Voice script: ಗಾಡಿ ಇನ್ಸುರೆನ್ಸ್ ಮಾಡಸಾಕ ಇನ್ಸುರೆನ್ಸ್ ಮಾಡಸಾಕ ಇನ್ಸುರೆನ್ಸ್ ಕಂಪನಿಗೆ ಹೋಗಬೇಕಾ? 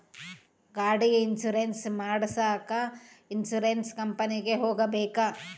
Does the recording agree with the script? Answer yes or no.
no